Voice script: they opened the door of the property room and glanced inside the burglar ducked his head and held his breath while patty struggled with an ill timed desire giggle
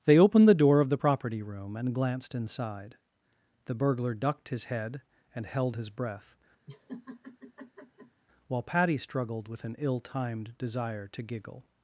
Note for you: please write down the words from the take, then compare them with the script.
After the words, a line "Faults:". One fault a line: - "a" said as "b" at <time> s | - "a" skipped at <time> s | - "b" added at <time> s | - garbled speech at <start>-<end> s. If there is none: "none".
they opened the door of the property room and glanced inside the burglar ducked his head and held his breath while patty struggled with an ill timed desire to giggle
Faults:
- "to" added at 11.1 s